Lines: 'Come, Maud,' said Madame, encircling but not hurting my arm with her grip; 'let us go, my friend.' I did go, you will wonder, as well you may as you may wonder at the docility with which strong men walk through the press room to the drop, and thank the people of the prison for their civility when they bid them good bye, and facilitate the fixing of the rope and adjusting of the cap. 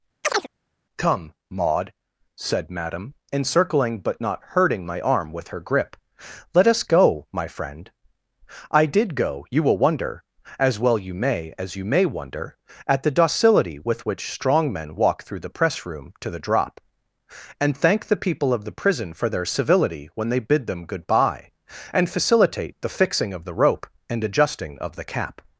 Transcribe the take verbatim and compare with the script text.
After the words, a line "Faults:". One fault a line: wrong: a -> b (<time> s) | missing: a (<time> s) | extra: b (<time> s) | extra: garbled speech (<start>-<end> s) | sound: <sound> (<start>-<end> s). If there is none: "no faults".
'Come, Maud,' said Madame, encircling but not hurting my arm with her grip; 'let us go, my friend.' I did go, you will wonder, as well you may as you may wonder at the docility with which strong men walk through the press room to the drop, and thank the people of the prison for their civility when they bid them good bye, and facilitate the fixing of the rope and adjusting of the cap.
Faults:
sound: chirp (0.2-0.5 s)